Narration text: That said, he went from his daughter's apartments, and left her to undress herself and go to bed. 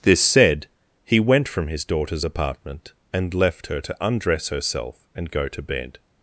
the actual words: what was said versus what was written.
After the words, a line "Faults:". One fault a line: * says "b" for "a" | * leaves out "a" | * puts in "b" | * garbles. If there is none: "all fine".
This said, he went from his daughter's apartment, and left her to undress herself and go to bed.
Faults:
* says "This" for "That"
* says "apartment" for "apartments"